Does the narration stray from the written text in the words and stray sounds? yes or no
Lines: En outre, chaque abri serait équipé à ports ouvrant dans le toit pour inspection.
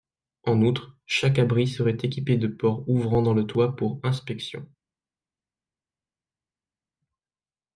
yes